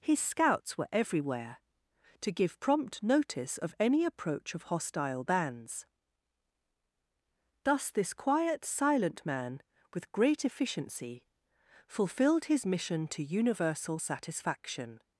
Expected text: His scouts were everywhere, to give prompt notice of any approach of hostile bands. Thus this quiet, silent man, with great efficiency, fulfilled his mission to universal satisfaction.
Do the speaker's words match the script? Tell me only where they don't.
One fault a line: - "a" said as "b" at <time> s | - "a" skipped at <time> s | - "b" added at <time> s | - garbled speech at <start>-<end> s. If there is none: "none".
none